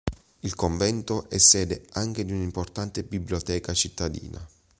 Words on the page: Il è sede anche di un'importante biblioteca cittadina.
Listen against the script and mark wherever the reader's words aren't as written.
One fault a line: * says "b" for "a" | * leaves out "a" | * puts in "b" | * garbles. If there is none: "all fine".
* puts in "convento"